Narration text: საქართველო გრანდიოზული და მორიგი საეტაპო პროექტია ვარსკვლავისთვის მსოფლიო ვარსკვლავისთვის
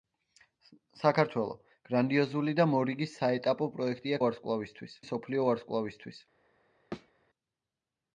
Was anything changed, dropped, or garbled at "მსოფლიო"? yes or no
no